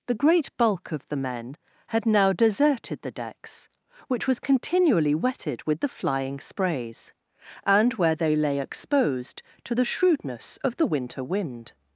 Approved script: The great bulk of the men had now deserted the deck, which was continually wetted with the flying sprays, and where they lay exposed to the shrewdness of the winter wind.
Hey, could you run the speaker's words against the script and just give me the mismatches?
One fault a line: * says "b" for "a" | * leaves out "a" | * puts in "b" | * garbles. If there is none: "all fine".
* says "decks" for "deck"